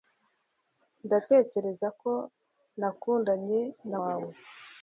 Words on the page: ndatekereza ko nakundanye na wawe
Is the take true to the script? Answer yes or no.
yes